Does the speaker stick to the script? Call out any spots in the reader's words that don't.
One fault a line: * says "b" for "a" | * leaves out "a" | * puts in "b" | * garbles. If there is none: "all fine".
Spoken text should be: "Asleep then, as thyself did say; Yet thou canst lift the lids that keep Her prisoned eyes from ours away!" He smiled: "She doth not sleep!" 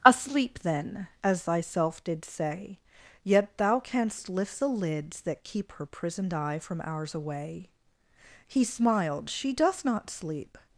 * says "eye" for "eyes"